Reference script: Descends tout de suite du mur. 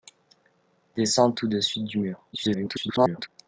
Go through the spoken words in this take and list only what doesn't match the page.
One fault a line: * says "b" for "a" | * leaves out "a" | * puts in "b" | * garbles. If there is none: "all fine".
* garbles